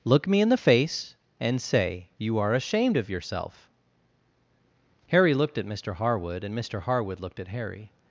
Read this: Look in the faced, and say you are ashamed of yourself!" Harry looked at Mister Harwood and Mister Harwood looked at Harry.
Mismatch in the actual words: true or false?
true